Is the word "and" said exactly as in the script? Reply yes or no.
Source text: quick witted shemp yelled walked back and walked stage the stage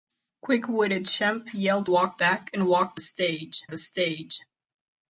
yes